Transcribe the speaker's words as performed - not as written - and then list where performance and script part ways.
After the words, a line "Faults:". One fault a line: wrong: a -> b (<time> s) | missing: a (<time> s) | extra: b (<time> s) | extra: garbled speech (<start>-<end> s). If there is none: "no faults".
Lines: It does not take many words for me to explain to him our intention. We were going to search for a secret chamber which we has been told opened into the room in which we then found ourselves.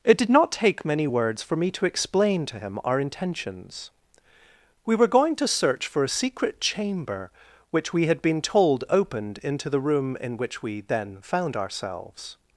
It did not take many words for me to explain to him our intentions. We were going to search for a secret chamber which we had been told opened into the room in which we then found ourselves.
Faults:
wrong: does -> did (0.2 s)
wrong: intention -> intentions (3.0 s)
wrong: has -> had (8.1 s)